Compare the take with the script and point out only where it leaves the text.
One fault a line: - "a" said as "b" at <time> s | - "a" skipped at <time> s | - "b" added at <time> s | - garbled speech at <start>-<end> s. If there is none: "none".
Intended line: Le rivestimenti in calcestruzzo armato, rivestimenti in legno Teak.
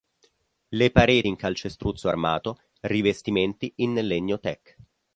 - "rivestimenti" said as "pareti" at 0.9 s